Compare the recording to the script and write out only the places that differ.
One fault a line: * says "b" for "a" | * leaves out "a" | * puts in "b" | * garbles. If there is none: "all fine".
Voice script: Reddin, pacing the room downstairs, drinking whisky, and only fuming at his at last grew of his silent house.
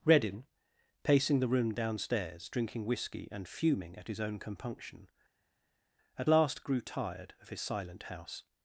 * leaves out "only"
* puts in "own compunction"
* puts in "tired"